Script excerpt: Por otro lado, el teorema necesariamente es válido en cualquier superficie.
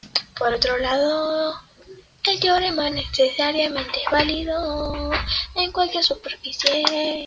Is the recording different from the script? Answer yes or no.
no